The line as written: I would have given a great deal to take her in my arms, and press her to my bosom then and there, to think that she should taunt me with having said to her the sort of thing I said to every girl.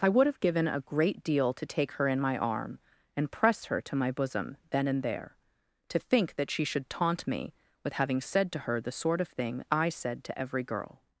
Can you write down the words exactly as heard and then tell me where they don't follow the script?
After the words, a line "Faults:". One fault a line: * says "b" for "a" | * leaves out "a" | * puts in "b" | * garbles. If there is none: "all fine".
I would have given a great deal to take her in my arm, and press her to my bosom then and there, to think that she should taunt me with having said to her the sort of thing I said to every girl.
Faults:
* says "arm" for "arms"